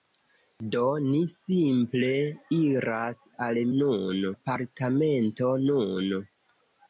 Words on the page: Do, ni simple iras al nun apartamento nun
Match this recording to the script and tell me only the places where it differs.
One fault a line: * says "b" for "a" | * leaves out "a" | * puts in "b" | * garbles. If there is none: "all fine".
all fine